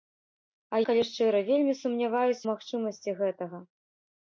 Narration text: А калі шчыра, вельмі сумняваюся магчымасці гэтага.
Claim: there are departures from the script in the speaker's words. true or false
false